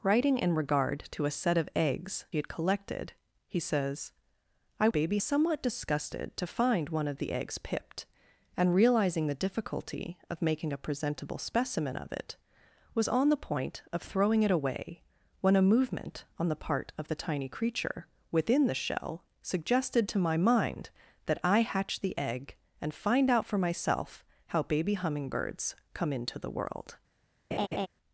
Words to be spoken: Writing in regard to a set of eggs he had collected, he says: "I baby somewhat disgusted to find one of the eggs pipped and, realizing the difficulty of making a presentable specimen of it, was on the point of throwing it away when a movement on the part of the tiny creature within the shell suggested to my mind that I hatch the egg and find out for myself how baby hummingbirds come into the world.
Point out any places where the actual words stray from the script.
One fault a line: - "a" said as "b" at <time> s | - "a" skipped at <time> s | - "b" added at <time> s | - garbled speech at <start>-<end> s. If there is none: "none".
none